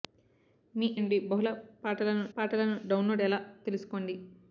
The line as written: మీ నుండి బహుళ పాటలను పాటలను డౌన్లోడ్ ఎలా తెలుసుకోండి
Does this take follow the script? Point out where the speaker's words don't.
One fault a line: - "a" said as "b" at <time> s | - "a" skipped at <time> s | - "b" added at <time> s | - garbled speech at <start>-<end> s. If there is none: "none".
none